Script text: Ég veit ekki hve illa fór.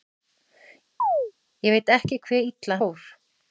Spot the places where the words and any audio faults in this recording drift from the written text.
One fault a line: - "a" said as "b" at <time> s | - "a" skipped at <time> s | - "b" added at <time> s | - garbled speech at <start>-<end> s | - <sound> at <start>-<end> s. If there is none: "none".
- chirp at 1.0-1.3 s